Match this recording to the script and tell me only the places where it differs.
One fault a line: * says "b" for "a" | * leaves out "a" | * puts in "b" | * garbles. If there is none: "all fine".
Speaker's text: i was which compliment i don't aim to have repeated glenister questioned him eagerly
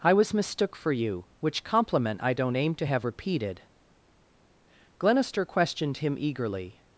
* puts in "mistook for you"